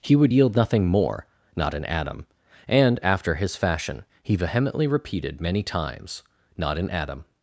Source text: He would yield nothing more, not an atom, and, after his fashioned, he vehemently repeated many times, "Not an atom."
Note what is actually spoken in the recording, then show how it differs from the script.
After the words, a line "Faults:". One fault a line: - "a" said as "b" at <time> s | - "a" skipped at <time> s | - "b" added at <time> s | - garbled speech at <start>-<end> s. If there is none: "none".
He would yield nothing more, not an atom, and, after his fashion, he vehemently repeated many times, "Not an atom."
Faults:
- "fashioned" said as "fashion" at 3.5 s